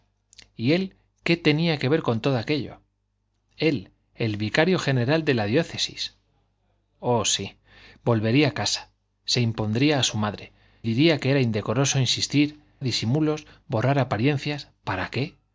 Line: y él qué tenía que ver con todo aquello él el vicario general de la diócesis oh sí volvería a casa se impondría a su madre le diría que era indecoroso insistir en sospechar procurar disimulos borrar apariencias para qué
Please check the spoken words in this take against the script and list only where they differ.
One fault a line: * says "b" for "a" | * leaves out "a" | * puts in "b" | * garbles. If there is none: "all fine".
* leaves out "le"
* leaves out "en sospechar procurar"